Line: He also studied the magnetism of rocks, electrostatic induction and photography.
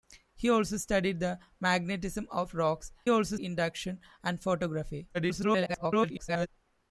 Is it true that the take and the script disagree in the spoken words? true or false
true